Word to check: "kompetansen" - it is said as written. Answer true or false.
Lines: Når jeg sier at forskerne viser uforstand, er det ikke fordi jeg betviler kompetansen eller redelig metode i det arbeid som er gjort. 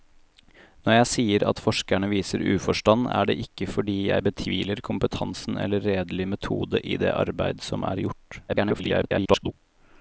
true